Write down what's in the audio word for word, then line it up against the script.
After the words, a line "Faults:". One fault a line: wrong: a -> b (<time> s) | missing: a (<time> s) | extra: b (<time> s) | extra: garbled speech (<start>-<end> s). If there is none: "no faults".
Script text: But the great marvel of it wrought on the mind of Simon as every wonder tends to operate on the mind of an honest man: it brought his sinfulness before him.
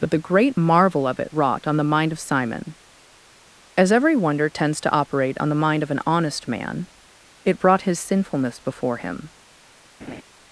But the great marvel of it wrought on the mind of Simon as every wonder tends to operate on the mind of an honest man: it brought his sinfulness before him.
Faults:
no faults